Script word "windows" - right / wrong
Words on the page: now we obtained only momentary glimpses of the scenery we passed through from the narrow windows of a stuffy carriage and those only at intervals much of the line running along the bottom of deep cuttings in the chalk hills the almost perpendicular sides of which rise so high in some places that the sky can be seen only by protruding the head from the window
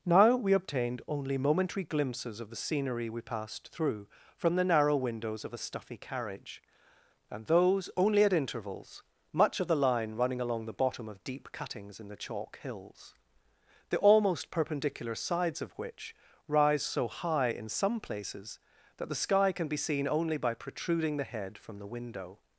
right